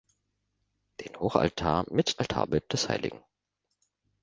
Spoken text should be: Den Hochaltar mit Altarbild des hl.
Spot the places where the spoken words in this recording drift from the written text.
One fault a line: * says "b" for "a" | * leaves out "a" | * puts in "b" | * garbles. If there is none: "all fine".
all fine